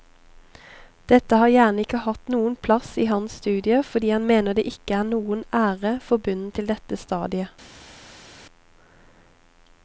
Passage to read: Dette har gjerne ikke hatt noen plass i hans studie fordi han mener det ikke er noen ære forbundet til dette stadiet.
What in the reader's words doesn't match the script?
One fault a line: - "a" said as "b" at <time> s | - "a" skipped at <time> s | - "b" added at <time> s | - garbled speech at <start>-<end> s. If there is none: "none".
none